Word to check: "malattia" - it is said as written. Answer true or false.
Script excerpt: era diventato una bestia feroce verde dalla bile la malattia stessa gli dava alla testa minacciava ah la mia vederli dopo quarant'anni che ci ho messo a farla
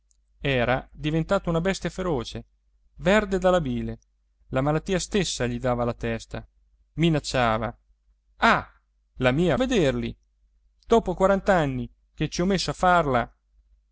true